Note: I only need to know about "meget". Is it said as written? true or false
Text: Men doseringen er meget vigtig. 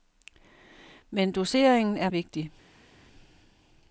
false